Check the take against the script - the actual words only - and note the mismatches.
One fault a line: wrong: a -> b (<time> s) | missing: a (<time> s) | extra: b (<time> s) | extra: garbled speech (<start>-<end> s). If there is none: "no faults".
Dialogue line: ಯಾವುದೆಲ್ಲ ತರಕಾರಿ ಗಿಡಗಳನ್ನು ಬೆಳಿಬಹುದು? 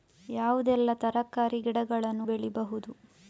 no faults